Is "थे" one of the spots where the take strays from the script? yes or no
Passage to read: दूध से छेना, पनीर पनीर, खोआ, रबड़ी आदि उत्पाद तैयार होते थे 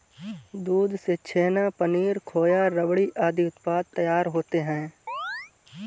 yes